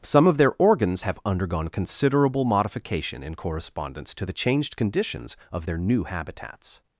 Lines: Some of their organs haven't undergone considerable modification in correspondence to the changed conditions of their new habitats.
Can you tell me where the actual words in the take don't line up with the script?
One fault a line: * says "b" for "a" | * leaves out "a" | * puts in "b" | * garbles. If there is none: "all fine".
* says "have" for "haven't"